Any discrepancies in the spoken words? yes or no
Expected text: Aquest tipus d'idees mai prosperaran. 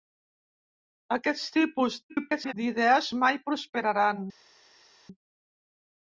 yes